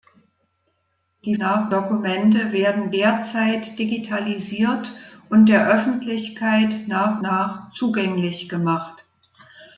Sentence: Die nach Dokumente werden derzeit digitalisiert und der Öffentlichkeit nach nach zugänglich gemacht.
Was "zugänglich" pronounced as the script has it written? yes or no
yes